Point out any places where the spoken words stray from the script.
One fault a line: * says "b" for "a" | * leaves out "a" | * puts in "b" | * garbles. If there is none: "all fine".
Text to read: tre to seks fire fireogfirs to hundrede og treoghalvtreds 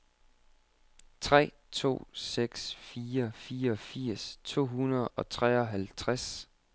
all fine